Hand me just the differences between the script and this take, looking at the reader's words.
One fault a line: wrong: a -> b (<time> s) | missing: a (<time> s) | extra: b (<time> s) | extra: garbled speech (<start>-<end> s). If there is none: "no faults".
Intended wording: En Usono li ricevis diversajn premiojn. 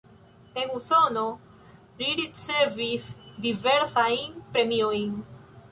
no faults